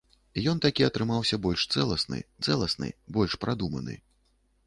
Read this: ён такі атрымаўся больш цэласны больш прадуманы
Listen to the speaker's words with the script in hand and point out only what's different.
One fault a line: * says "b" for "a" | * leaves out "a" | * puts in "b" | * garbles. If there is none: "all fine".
* puts in "цэласны"